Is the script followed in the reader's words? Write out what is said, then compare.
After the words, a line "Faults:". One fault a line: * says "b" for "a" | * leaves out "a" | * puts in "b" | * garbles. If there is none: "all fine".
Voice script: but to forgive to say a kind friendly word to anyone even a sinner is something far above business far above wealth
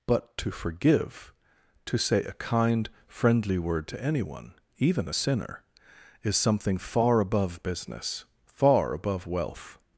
but to forgive to say a kind friendly word to anyone even a sinner is something far above business far above wealth
Faults:
all fine